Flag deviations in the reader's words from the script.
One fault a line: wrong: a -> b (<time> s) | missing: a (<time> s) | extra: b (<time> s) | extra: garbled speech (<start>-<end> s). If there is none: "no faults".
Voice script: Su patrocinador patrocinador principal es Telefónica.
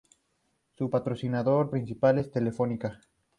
missing: patrocinador (1.7 s)